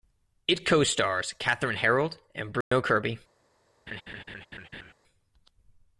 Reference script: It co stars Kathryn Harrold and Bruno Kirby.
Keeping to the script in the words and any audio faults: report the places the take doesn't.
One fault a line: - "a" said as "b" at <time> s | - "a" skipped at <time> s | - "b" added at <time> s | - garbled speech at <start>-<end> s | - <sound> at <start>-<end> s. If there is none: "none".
- dropout at 2.6-2.7 s
- laugh at 3.9-4.9 s